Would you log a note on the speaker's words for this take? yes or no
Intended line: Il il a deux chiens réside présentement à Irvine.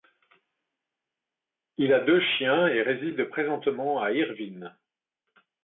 yes